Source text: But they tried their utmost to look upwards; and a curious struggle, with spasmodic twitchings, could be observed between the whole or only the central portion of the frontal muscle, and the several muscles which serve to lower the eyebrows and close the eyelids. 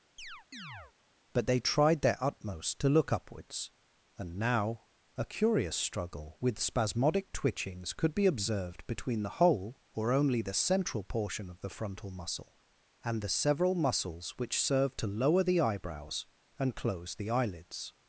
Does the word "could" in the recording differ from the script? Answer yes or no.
no